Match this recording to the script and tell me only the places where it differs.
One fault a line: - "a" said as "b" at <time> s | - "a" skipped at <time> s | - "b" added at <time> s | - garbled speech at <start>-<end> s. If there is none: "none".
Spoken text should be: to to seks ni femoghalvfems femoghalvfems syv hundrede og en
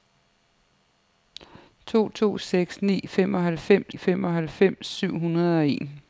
none